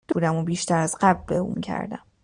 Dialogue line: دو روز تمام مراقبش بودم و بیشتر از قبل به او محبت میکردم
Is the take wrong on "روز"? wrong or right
wrong